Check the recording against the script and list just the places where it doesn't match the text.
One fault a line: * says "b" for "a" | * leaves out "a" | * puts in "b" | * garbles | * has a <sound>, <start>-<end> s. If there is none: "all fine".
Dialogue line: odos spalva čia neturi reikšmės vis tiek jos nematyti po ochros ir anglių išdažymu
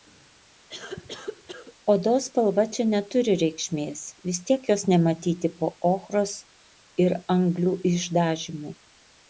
* has a cough, 0.7-1.7 s